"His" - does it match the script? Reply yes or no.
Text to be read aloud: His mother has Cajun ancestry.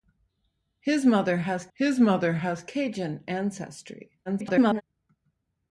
yes